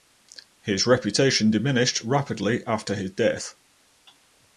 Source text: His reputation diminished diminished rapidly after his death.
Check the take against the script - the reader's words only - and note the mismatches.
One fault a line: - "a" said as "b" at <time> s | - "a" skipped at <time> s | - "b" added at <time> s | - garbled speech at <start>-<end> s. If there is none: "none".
- "diminished" skipped at 2.0 s